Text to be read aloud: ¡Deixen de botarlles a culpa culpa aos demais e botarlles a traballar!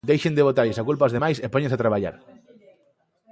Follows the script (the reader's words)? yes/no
no